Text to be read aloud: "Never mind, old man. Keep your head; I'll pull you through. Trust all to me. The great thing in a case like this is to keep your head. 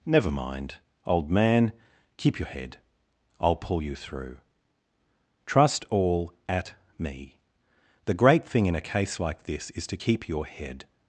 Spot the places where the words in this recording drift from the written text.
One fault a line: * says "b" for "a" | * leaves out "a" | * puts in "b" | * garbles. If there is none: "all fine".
* says "at" for "to"